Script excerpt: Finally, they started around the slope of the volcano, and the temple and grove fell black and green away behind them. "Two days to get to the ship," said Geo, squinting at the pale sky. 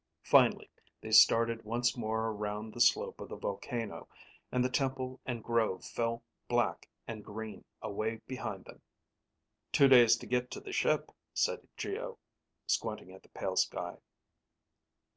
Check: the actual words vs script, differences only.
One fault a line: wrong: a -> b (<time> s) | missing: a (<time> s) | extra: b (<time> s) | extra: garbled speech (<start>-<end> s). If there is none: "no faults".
extra: once more (1.6 s)